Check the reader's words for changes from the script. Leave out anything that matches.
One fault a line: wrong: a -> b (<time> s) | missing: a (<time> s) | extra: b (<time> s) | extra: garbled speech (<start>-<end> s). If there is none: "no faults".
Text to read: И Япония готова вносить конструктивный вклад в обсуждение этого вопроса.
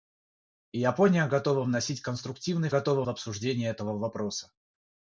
wrong: вклад -> готова (2.7 s)